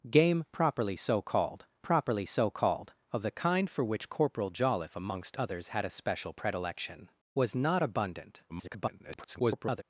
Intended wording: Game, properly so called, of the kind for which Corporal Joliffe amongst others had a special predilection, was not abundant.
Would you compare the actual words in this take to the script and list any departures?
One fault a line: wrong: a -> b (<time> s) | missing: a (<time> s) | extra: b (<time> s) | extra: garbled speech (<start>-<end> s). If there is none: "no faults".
extra: properly so called (1.8 s)
extra: garbled speech (8.5-9.8 s)